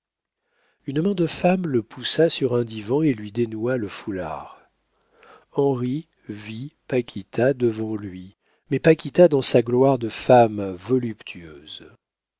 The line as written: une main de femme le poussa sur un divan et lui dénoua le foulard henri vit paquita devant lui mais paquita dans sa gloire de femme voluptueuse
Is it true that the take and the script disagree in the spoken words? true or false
false